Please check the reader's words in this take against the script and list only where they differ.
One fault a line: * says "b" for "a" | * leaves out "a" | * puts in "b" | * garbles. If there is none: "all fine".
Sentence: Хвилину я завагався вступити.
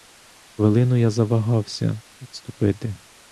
all fine